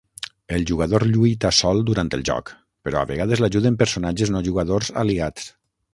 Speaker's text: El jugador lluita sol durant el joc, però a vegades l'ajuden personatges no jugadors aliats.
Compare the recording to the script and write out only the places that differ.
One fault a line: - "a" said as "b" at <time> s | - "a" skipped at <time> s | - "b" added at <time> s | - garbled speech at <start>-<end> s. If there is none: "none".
none